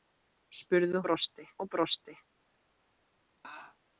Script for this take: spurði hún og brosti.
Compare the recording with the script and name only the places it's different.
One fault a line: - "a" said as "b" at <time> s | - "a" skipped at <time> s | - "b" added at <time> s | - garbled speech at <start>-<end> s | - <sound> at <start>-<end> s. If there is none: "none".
- "hún" said as "brosti" at 1.1 s
- laugh at 3.4-3.8 s